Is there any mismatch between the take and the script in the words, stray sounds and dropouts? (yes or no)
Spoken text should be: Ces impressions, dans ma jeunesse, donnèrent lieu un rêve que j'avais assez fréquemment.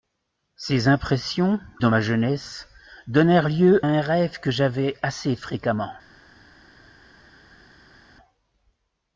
no